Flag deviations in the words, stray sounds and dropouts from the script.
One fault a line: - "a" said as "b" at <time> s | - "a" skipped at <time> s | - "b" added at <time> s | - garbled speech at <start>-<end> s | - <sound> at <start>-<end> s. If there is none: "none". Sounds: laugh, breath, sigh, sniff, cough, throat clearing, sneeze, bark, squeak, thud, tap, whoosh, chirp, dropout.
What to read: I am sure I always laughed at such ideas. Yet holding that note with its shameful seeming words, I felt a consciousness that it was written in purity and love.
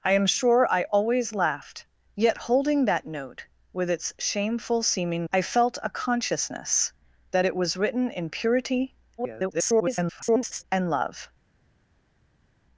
- "at such ideas" skipped at 1.9 s
- "words" skipped at 5.3 s
- garbled speech at 9.2-10.6 s